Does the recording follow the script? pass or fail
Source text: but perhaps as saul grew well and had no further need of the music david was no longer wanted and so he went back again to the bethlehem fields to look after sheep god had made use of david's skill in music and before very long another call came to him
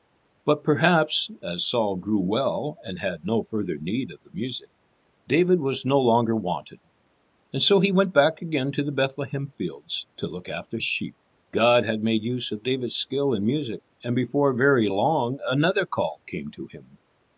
pass